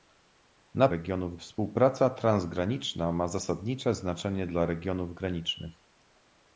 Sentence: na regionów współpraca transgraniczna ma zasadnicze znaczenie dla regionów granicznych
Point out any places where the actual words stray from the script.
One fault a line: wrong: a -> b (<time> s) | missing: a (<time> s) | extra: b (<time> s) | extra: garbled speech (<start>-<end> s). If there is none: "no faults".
no faults